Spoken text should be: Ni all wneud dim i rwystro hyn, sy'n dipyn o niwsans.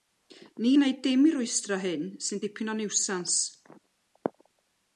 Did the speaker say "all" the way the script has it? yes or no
no